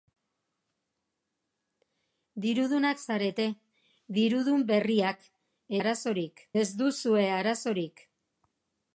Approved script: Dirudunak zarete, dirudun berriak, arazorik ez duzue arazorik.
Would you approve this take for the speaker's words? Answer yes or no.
yes